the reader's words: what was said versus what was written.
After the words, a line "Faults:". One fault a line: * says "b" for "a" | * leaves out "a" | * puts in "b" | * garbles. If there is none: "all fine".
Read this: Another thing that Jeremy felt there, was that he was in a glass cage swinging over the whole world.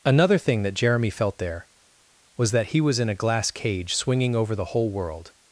Another thing that Jeremy felt there, was that he was in a glass cage swinging over the whole world.
Faults:
all fine